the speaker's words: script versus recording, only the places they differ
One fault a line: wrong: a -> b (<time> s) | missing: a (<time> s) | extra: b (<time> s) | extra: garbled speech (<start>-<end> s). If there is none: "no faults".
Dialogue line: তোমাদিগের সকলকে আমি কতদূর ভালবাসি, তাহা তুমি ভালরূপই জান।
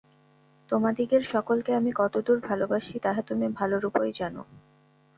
no faults